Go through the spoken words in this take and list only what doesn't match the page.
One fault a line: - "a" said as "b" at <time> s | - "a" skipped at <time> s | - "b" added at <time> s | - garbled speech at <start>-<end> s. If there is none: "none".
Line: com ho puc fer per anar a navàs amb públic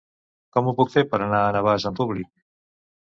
none